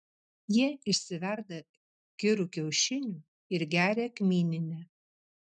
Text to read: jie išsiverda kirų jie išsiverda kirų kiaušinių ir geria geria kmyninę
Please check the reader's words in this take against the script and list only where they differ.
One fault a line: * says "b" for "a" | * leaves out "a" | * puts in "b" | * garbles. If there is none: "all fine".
* leaves out "jie išsiverda kirų"
* leaves out "geria"